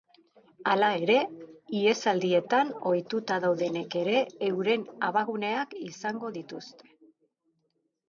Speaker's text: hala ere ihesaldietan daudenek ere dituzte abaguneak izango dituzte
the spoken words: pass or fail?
fail